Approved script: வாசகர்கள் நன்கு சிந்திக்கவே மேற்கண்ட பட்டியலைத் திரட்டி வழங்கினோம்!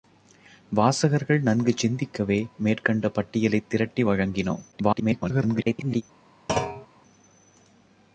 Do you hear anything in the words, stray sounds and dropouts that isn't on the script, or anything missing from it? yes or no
yes